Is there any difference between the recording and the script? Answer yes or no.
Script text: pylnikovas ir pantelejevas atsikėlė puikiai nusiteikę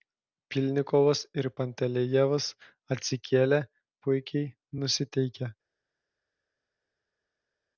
no